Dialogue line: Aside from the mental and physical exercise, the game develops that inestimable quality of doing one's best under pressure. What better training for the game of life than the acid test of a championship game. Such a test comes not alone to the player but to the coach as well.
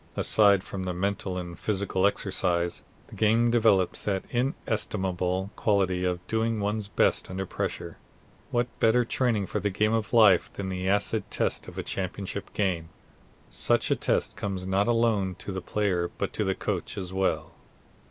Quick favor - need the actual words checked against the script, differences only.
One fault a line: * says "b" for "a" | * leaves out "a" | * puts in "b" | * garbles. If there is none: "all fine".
all fine